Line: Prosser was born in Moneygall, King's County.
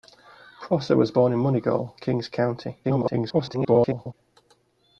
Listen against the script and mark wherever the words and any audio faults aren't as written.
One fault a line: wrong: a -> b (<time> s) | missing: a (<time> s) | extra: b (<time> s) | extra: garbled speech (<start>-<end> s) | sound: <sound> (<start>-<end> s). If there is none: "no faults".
extra: garbled speech (2.8-4.1 s)